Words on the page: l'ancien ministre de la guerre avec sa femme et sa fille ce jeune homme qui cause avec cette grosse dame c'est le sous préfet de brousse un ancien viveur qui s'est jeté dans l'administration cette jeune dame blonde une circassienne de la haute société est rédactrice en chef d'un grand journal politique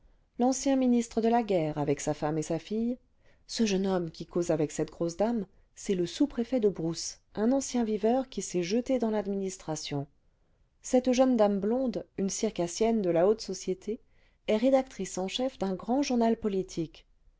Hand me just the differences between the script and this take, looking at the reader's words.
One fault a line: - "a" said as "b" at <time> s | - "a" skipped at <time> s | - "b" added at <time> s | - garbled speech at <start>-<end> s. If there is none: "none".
none